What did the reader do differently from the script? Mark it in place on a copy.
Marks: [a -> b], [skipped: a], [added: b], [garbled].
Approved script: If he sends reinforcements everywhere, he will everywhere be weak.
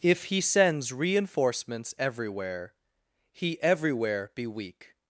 If he sends reinforcements everywhere, he [skipped: will] everywhere be weak.